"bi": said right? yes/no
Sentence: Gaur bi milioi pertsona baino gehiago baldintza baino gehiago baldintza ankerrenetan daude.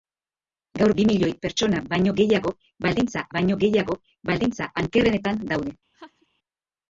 yes